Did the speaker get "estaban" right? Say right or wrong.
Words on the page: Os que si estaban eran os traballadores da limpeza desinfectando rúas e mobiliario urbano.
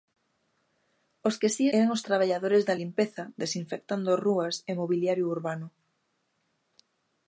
wrong